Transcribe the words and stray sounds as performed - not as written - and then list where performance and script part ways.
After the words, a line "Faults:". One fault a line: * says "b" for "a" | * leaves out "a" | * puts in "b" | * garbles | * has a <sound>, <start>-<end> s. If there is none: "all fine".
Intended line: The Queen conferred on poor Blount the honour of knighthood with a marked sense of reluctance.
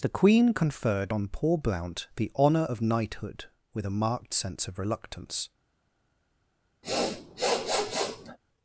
The Queen conferred on poor Blount the honour of knighthood with a marked sense of reluctance.
Faults:
* has a sniff, 6.8-8.4 s